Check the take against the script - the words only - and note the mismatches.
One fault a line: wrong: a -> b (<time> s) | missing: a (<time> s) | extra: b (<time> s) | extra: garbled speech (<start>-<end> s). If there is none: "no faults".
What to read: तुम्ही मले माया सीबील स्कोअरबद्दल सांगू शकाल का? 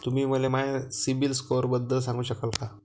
no faults